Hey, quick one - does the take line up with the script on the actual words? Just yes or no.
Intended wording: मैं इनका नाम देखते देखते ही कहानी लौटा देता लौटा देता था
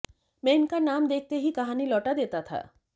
no